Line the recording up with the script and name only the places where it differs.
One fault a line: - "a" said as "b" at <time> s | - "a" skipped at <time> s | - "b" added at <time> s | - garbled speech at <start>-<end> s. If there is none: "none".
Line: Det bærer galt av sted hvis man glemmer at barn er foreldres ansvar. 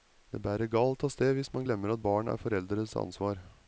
none